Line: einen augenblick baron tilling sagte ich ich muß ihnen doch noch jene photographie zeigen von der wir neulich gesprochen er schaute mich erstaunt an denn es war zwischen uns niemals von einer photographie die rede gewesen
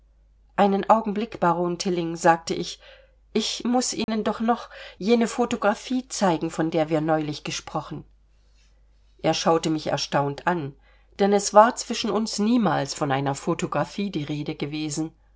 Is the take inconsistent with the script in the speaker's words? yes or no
no